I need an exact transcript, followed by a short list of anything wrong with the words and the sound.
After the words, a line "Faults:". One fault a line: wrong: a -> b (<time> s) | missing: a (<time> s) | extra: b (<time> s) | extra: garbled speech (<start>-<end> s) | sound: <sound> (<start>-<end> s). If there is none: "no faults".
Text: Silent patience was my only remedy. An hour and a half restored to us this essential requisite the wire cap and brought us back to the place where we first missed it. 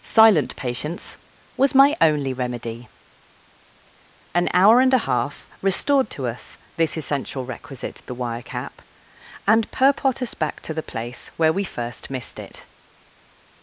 Silent patience was my only remedy. An hour and a half restored to us this essential requisite the wire cap and purport us back to the place where we first missed it.
Faults:
wrong: brought -> purport (9.7 s)